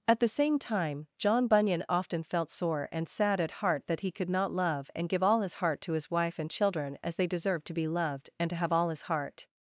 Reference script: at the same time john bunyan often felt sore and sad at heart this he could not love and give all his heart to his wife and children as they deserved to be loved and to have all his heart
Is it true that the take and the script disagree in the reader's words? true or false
true